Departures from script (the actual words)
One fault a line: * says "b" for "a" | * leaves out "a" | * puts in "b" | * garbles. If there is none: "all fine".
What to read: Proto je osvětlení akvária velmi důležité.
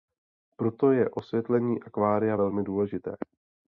all fine